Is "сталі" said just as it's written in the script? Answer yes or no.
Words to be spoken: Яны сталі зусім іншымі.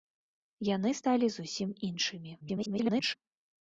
yes